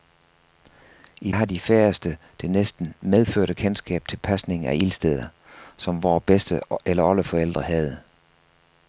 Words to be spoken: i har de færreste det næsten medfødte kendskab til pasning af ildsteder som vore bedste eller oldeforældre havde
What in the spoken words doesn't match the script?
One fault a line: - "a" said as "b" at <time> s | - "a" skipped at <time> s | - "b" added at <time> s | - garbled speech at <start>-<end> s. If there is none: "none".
none